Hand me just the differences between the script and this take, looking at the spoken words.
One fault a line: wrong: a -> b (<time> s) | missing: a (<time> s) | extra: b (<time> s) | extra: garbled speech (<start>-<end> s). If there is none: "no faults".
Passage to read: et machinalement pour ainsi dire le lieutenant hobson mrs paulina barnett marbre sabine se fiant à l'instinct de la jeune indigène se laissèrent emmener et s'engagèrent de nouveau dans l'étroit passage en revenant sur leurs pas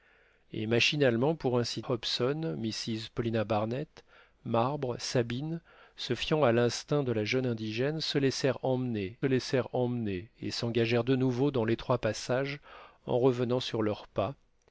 missing: dire le lieutenant (1.8 s)
extra: laissèrent emmener (9.2 s)